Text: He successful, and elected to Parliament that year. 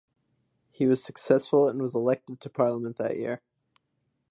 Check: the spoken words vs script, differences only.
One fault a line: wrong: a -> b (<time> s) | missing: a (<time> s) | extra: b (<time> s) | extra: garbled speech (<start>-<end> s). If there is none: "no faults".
extra: was (0.9 s)
extra: was (1.8 s)